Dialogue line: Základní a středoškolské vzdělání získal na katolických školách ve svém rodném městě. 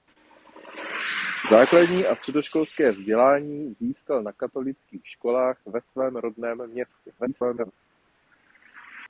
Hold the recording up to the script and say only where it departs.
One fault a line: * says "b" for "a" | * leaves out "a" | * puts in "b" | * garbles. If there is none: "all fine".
* garbles